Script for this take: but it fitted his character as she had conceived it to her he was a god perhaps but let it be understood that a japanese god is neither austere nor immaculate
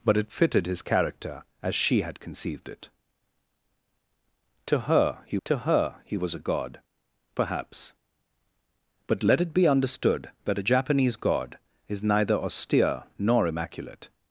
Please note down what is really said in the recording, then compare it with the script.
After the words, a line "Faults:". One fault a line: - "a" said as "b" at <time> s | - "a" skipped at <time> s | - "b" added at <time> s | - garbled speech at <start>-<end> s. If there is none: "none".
but it fitted his character as she had conceived it to her he to her he was a god perhaps but let it be understood that a japanese god is neither austere nor immaculate
Faults:
- "to her he" added at 5.5 s